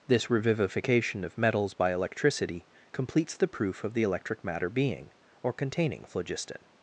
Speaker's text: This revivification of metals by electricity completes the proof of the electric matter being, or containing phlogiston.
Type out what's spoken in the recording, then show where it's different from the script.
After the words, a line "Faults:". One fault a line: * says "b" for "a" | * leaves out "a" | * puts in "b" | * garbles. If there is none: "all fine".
This revivification of metals by electricity completes the proof of the electric matter being, or containing phlogiston.
Faults:
all fine